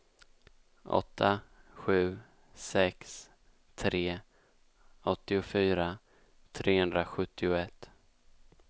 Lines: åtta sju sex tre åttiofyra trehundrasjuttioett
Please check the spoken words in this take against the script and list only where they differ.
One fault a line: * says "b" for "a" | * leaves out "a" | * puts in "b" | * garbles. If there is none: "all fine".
all fine